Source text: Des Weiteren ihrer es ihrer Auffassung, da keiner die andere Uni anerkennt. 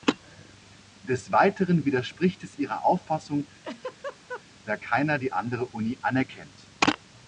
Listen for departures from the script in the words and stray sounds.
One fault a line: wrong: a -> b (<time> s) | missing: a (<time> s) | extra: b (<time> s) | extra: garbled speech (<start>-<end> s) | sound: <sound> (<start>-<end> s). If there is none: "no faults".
wrong: ihrer -> widerspricht (1.9 s)
sound: laugh (3.6-4.4 s)